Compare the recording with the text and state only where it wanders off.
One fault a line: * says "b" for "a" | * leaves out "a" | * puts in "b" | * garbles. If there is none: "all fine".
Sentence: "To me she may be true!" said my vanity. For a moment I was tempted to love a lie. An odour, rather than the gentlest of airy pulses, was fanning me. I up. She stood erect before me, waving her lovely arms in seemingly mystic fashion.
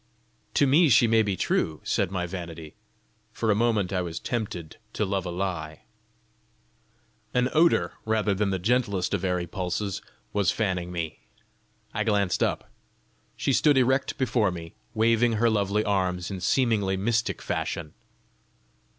* puts in "glanced"